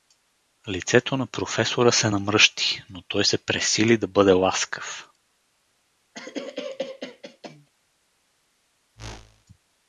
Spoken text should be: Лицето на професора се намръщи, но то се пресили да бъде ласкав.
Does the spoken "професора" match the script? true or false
true